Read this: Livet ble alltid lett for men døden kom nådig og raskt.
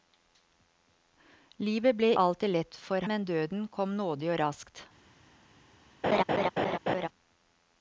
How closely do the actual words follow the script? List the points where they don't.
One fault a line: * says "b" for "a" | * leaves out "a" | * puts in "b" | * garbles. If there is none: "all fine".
all fine